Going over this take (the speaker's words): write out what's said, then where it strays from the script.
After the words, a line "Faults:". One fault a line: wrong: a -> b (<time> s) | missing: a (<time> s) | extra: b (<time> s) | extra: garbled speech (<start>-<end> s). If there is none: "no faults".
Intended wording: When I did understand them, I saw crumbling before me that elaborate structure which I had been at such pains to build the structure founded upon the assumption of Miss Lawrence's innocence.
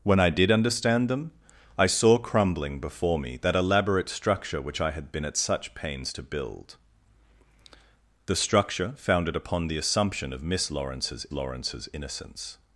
When I did understand them, I saw crumbling before me that elaborate structure which I had been at such pains to build the structure founded upon the assumption of Miss Lawrence's Lawrence's innocence.
Faults:
extra: Lawrence's (11.3 s)